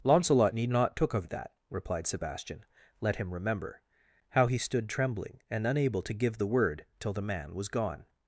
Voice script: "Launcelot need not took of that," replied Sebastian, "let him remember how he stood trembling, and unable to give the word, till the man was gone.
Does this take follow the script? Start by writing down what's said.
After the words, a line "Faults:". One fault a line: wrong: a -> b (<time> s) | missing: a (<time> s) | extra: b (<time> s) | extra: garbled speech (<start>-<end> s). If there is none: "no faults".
"Launcelot need not took of that," replied Sebastian, "let him remember how he stood trembling, and unable to give the word, till the man was gone.
Faults:
no faults